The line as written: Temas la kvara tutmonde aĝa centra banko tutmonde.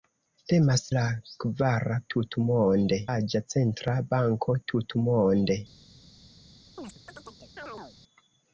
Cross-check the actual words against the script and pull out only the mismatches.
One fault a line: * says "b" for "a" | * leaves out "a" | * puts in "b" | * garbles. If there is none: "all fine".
all fine